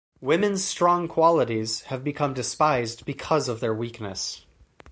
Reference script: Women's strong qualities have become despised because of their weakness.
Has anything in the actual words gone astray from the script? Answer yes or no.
no